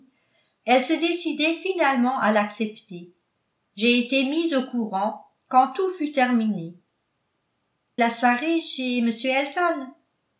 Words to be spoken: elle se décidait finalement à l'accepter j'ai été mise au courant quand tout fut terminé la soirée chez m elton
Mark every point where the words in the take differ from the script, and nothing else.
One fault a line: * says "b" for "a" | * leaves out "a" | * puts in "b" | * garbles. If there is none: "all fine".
all fine